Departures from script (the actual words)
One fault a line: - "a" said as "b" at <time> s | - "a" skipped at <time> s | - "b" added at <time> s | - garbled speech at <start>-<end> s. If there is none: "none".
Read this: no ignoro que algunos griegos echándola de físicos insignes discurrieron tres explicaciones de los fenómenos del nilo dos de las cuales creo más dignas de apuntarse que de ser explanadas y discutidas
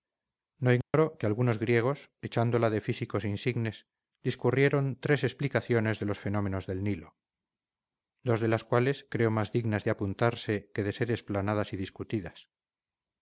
none